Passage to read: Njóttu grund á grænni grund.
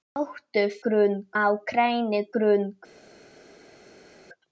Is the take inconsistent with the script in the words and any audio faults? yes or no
no